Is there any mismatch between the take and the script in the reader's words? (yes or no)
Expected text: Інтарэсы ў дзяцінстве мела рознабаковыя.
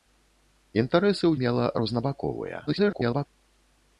yes